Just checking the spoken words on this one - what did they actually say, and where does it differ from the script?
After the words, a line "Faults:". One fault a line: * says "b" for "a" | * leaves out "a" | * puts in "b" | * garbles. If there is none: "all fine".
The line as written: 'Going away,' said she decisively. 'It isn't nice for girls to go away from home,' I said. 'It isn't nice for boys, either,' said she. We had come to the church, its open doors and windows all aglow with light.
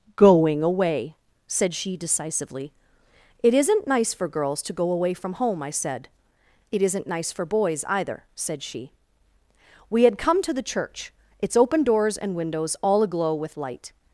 'Going away,' said she decisively. 'It isn't nice for girls to go away from home,' I said. 'It isn't nice for boys, either,' said she. We had come to the church, its open doors and windows all aglow with light.
Faults:
all fine